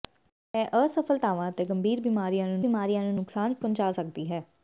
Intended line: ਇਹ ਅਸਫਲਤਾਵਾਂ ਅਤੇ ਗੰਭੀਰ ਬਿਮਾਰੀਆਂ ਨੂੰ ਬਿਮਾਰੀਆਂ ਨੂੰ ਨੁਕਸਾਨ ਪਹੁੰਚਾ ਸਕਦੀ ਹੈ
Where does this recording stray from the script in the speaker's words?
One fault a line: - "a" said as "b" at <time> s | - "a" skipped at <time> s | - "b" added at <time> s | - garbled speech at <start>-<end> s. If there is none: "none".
none